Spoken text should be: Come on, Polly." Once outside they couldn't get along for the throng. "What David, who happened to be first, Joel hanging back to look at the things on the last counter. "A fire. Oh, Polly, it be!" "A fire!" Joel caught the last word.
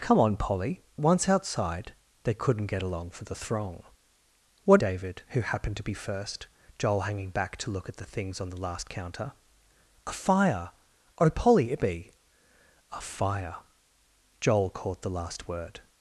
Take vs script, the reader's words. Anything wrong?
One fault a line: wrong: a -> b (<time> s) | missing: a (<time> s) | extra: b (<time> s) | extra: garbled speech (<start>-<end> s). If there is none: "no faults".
no faults